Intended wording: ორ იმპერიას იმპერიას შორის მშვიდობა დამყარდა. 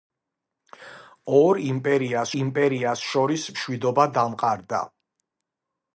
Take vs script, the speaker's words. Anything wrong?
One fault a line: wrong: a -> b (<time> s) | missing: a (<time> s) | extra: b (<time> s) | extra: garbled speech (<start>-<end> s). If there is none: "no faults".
no faults